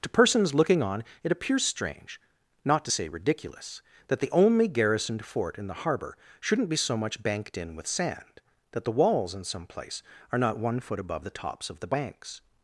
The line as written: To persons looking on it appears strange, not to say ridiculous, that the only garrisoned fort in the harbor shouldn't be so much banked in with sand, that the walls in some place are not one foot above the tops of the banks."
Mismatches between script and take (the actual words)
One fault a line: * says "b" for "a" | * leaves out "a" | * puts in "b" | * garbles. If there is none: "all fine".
all fine